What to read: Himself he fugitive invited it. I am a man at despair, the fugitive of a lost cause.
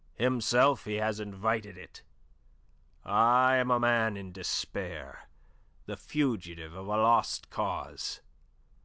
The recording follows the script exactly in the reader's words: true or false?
false